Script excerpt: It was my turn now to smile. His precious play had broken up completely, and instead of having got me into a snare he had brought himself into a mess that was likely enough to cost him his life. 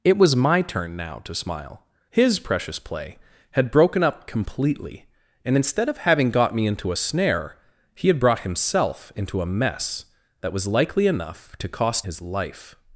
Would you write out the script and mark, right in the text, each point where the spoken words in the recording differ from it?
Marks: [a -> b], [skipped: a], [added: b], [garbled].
It was my turn now to smile. His precious play had broken up completely, and instead of having got me into a snare he had brought himself into a mess that was likely enough to cost [skipped: him] his life.